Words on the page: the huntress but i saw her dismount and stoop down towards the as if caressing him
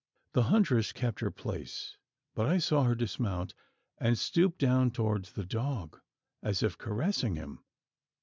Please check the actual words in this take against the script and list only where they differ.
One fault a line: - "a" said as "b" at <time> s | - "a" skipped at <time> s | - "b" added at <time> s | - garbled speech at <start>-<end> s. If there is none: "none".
- "kept her place" added at 0.9 s
- "dog" added at 5.5 s